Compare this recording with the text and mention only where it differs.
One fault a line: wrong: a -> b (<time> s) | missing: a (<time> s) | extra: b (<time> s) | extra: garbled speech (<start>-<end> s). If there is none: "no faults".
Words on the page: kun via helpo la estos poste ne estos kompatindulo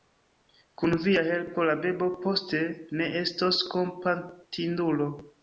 wrong: estos -> bebo (1.8 s)